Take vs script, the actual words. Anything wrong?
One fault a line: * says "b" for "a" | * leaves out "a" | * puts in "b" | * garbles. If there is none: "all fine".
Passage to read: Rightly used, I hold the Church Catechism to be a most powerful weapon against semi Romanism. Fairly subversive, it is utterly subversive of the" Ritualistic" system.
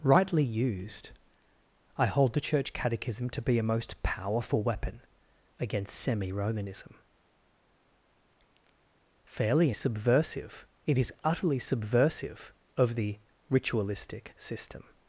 all fine